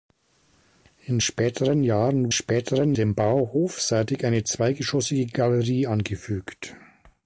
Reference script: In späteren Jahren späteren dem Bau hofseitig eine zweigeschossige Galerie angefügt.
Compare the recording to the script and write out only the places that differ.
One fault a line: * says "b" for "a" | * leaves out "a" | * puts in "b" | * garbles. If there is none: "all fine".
all fine